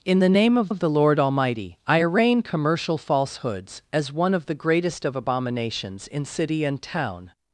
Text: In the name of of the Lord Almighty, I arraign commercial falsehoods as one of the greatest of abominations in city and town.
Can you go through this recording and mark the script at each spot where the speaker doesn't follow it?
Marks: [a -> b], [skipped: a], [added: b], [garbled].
In the name of of the Lord Almighty, I arraign commercial falsehoods as one of the greatest of abominations in city and town.